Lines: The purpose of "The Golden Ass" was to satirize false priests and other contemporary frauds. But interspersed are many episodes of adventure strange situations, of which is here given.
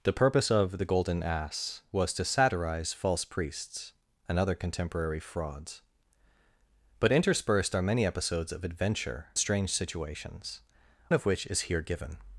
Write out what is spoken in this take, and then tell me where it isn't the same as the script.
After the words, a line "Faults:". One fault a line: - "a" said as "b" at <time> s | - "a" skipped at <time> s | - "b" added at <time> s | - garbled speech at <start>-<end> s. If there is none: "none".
The purpose of "The Golden Ass" was to satirize false priests and other contemporary frauds. But interspersed are many episodes of adventure strange situations, of which is here given.
Faults:
none